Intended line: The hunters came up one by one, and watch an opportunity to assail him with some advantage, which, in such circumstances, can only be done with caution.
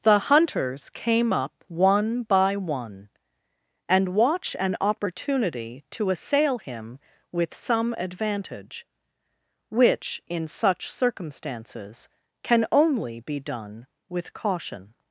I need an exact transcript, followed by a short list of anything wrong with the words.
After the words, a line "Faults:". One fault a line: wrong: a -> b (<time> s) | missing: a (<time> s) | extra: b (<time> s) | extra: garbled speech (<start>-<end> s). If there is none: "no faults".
The hunters came up one by one, and watch an opportunity to assail him with some advantage, which, in such circumstances, can only be done with caution.
Faults:
no faults